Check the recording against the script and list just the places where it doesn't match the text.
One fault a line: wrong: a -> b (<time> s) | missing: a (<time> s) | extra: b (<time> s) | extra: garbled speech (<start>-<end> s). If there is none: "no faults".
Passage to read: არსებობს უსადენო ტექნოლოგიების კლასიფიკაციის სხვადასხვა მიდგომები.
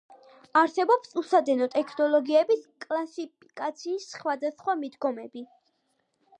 no faults